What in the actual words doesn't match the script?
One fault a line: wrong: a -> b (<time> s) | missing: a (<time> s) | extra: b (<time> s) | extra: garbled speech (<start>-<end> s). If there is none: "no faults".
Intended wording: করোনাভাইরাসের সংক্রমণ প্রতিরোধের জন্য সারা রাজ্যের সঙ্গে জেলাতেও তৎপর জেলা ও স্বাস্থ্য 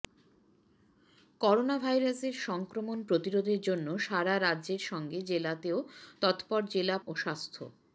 no faults